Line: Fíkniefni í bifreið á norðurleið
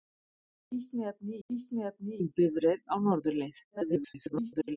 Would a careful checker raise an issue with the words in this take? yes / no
yes